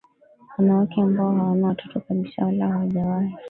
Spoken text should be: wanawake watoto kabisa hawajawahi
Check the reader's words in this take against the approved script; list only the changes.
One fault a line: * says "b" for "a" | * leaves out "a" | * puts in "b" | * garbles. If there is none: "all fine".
* puts in "ambao hawana"
* puts in "wala"